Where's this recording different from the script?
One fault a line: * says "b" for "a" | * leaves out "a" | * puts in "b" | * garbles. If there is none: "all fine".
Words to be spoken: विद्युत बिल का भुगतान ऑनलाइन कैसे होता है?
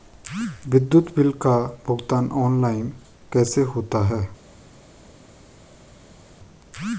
all fine